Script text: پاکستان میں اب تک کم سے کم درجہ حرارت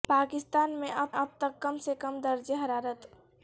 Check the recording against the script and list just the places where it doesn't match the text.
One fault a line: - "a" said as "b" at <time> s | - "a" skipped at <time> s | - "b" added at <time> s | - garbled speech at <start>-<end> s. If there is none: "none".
- "اب" added at 1.1 s